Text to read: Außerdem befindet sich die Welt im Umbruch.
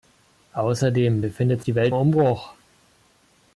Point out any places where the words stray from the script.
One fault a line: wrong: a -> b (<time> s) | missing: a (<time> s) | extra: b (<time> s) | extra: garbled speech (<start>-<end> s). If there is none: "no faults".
missing: sich (1.6 s)
missing: im (1.9 s)